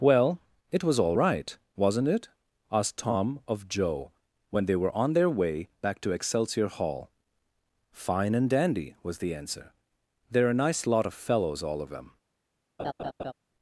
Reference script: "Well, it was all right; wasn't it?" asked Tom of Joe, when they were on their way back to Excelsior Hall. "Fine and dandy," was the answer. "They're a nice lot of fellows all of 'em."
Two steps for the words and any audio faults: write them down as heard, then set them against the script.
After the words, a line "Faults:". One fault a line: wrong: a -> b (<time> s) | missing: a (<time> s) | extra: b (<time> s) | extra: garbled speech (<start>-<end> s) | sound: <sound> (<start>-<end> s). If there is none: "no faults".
"Well, it was all right; wasn't it?" asked Tom of Joe, when they were on their way back to Excelsior Hall. "Fine and dandy," was the answer. "They're a nice lot of fellows all of 'them."
Faults:
wrong: em -> them (11.9 s)
sound: laugh (12.8-13.3 s)